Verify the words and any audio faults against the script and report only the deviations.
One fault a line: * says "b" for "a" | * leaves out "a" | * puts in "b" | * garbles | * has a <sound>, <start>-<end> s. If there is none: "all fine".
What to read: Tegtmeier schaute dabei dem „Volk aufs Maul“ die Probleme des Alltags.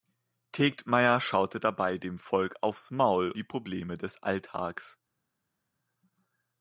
all fine